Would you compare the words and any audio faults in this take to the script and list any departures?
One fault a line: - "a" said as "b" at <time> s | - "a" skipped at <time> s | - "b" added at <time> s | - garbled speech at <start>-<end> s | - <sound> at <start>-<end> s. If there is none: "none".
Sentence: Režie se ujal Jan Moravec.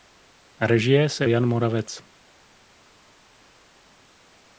- "ujal" skipped at 1.3 s